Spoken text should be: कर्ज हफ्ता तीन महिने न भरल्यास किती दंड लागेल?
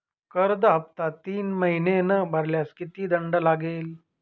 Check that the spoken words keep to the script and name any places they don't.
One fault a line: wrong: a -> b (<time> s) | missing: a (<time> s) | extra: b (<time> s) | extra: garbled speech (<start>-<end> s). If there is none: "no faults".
no faults